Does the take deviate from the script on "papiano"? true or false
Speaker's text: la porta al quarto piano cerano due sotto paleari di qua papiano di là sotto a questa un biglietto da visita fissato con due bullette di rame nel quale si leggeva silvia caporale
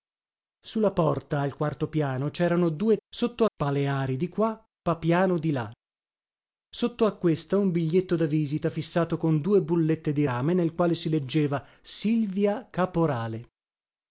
false